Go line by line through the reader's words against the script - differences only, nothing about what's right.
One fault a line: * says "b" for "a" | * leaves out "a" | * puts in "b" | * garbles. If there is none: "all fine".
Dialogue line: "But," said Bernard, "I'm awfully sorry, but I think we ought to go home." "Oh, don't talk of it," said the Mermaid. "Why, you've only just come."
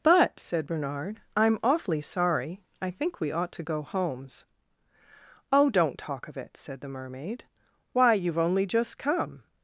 * leaves out "but"
* says "homes" for "home"